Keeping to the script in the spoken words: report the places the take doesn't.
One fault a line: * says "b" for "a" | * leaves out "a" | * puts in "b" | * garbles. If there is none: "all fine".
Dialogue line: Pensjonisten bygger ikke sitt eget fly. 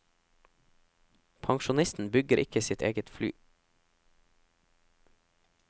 all fine